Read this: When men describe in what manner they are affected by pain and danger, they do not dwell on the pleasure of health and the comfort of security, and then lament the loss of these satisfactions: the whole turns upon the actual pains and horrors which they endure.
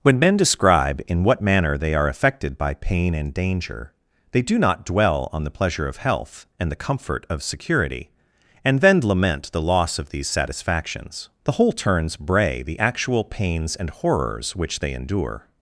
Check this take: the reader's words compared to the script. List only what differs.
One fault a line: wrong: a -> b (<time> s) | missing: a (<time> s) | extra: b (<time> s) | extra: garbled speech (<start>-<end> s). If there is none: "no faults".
wrong: upon -> bray (12.1 s)